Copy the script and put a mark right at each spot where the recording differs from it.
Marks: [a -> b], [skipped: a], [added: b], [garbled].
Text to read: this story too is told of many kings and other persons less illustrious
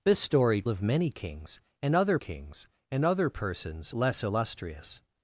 this story [too is told of many -> of many kings and other] kings and other persons less illustrious